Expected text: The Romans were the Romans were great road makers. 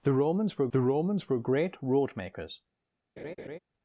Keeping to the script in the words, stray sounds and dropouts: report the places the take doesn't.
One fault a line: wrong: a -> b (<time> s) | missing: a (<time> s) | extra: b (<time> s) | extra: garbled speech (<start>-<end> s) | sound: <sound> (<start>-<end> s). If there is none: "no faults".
sound: laugh (3.2-3.6 s)